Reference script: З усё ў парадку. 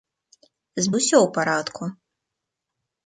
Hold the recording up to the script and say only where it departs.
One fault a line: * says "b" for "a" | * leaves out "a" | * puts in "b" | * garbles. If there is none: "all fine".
all fine